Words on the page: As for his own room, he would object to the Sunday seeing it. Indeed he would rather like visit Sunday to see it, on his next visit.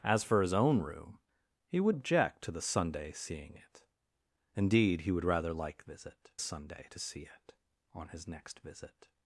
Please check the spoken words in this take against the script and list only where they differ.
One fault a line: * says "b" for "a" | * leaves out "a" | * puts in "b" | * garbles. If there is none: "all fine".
all fine